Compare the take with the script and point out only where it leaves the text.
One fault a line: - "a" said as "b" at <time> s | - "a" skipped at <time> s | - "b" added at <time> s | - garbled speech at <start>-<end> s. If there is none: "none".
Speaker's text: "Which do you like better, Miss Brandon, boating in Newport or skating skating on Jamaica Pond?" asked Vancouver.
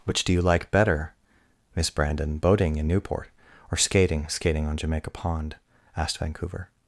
none